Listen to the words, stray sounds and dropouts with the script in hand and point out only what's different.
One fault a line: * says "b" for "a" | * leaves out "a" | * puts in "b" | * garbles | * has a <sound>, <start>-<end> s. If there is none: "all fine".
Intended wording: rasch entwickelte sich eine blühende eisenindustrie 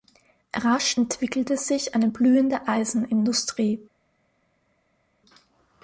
all fine